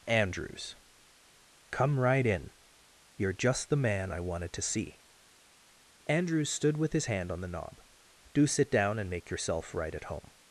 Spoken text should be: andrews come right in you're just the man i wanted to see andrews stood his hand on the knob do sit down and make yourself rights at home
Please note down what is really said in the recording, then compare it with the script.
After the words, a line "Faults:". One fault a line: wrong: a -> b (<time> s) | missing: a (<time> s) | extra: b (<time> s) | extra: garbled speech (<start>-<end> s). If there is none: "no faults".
andrews come right in you're just the man i wanted to see andrews stood with his hand on the knob do sit down and make yourself right at home
Faults:
extra: with (6.8 s)
wrong: rights -> right (9.7 s)